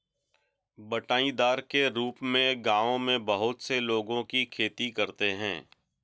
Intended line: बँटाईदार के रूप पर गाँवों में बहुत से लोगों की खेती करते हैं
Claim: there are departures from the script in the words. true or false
true